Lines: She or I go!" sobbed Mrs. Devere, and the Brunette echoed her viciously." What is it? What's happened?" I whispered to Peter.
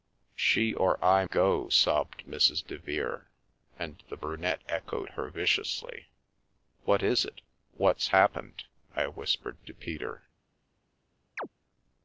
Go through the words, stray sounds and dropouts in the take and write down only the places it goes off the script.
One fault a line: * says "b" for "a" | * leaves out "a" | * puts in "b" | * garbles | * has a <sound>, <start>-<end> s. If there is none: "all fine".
* has a chirp, 11.4-11.5 s